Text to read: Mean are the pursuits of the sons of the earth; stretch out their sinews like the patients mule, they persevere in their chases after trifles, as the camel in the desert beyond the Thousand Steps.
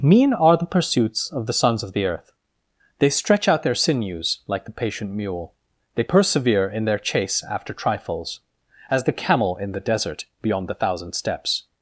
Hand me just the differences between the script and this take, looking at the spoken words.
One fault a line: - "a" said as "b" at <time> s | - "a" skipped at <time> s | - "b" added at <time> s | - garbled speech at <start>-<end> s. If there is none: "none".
- "they" added at 3.0 s
- "patients" said as "patient" at 4.7 s
- "chases" said as "chase" at 7.0 s